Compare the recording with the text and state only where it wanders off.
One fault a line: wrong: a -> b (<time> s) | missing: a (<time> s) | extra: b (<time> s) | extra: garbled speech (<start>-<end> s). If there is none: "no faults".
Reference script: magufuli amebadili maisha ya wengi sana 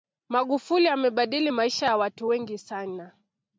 extra: watu (2.0 s)